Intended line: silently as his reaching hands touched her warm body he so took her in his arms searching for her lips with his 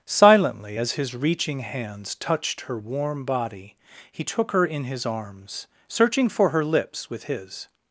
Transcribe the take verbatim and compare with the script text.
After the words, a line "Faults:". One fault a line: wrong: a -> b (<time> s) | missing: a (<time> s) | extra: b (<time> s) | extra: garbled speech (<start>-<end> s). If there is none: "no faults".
silently as his reaching hands touched her warm body he took her in his arms searching for her lips with his
Faults:
missing: so (4.2 s)